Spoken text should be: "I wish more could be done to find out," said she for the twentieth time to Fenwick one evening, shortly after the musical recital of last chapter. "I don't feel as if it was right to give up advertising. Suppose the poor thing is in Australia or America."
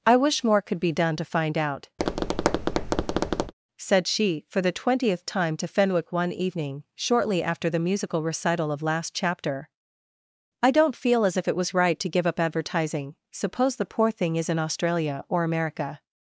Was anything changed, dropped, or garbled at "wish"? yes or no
no